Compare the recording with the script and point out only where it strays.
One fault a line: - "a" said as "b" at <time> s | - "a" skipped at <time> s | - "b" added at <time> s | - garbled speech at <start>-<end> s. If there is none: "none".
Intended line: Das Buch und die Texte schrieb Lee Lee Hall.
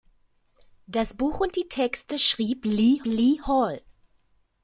none